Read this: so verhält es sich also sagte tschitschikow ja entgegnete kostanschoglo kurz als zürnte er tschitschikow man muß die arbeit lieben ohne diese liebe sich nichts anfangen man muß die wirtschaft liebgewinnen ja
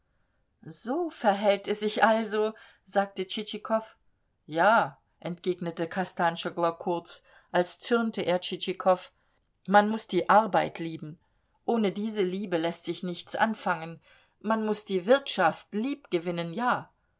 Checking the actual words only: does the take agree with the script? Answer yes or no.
no